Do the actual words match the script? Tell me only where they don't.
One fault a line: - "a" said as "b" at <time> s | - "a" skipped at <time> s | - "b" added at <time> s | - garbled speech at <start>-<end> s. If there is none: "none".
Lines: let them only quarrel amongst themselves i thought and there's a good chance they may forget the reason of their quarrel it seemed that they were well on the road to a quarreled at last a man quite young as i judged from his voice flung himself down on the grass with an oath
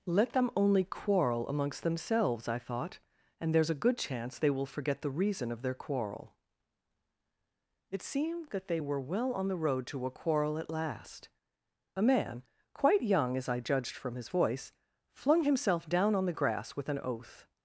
- "may" said as "will" at 4.5 s
- "quarreled" said as "quarrel" at 10.1 s